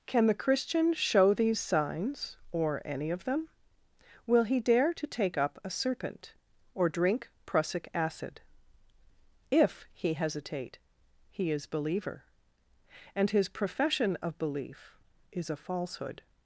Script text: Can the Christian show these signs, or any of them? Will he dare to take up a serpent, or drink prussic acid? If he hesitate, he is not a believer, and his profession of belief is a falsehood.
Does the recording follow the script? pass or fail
fail